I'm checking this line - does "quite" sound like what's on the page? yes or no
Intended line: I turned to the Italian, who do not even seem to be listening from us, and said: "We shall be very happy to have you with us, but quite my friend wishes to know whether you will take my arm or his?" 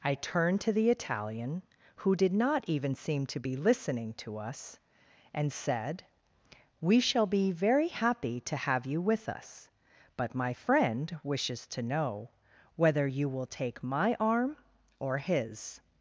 no